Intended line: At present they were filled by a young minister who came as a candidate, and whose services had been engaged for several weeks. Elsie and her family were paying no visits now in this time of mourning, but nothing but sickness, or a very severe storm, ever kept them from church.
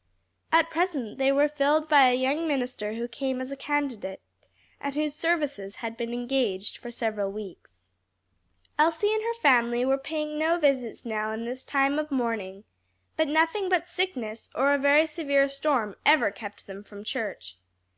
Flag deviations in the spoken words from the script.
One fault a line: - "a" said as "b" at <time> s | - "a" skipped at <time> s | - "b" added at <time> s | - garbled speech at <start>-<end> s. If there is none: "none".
none